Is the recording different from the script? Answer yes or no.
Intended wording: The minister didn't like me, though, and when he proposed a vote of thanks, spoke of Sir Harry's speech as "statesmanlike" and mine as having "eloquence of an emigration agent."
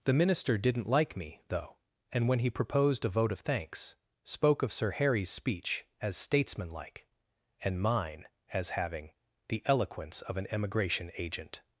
yes